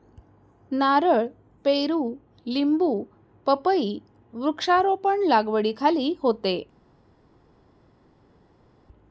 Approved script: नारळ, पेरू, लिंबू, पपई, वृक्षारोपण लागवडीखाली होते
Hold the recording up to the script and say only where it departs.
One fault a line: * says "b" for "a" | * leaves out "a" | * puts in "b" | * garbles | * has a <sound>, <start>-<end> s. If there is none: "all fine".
all fine